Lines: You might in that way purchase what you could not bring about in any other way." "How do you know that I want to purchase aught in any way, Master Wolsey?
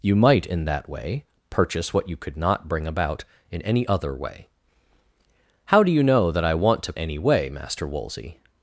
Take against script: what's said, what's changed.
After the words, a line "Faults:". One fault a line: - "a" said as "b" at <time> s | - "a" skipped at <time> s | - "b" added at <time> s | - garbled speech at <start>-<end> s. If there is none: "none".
You might in that way purchase what you could not bring about in any other way." "How do you know that I want to any way, Master Wolsey?
Faults:
- "purchase aught in" skipped at 6.9 s